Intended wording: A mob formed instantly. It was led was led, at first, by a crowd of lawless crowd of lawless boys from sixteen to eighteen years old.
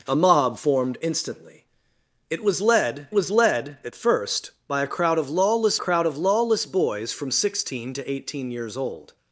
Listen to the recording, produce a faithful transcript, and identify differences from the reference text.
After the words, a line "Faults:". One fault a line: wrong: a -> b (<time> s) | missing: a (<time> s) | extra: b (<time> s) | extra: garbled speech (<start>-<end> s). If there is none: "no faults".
A mob formed instantly. It was led was led, at first, by a crowd of lawless crowd of lawless boys from sixteen to eighteen years old.
Faults:
no faults